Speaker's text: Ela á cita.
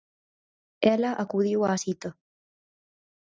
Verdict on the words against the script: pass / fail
fail